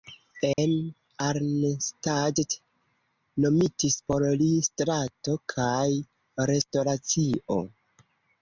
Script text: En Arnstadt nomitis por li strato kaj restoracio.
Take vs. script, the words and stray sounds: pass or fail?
fail